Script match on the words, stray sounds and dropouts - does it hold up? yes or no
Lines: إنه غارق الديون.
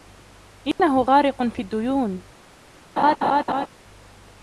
no